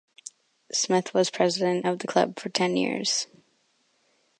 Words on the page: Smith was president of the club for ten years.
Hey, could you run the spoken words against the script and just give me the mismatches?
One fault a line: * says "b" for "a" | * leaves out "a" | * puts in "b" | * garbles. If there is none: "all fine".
all fine